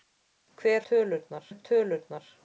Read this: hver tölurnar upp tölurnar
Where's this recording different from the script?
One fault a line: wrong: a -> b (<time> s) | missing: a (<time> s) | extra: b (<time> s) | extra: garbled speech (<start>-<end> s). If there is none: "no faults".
no faults